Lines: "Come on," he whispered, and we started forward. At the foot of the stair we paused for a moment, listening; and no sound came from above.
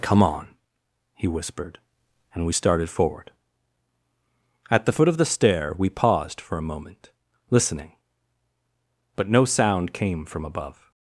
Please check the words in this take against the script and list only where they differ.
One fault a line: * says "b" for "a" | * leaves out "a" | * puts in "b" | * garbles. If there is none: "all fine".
* says "but" for "and"